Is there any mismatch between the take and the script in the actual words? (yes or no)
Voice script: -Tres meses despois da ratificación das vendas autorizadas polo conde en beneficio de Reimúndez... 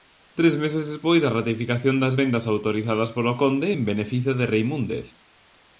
no